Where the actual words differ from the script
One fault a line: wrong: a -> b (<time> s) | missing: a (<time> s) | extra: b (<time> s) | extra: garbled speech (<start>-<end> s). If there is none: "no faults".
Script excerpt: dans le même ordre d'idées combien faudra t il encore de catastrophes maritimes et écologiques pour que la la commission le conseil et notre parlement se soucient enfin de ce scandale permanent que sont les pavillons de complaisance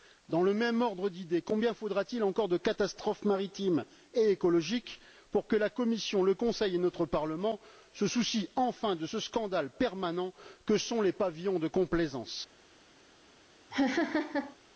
missing: la (5.7 s)